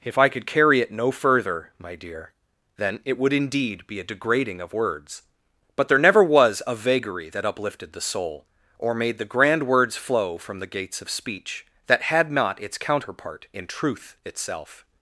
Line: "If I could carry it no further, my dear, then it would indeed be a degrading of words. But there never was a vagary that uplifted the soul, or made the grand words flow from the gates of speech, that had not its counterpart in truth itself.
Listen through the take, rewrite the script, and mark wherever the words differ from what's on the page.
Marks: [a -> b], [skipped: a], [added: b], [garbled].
"If I could carry it no further, my dear, then it would indeed be a degrading of words. But there never was a vagary that uplifted the soul, or made the grand words flow from the gates of speech, that had not its counterpart in truth itself.